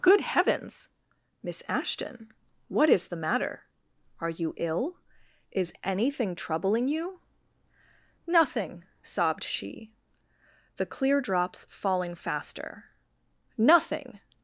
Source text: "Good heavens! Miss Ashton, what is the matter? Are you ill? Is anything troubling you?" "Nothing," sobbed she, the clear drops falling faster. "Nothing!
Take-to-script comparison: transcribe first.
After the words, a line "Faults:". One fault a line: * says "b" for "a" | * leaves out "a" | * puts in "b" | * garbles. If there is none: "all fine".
"Good heavens! Miss Ashton, what is the matter? Are you ill? Is anything troubling you?" "Nothing," sobbed she, the clear drops falling faster. "Nothing!
Faults:
all fine